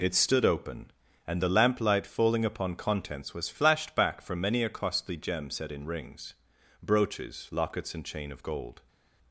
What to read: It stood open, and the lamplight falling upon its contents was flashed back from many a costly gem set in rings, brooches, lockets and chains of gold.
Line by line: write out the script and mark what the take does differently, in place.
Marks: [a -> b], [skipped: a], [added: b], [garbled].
It stood open, and the lamplight falling upon [skipped: its] contents was flashed back from many a costly gem set in rings, brooches, lockets and [chains -> chain] of gold.